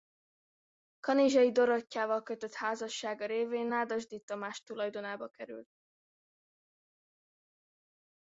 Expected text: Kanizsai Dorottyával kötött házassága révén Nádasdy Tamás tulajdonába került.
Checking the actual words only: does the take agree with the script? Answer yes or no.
yes